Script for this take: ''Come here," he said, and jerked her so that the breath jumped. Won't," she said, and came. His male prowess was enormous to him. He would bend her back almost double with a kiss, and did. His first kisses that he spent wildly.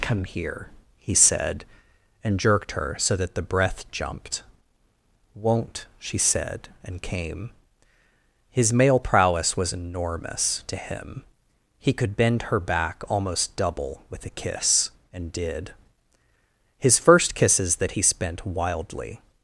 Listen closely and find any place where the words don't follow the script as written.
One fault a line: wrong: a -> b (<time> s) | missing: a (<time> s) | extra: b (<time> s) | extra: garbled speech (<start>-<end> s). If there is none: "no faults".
wrong: would -> could (11.9 s)